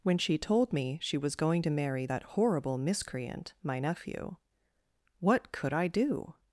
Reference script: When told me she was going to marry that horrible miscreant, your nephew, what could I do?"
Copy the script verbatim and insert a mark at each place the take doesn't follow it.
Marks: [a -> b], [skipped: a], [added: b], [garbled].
When [added: she] told me she was going to marry that horrible miscreant, [your -> my] nephew, what could I do?"